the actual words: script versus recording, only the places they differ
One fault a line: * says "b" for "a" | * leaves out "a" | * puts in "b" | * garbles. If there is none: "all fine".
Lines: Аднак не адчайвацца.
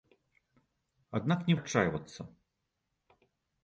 all fine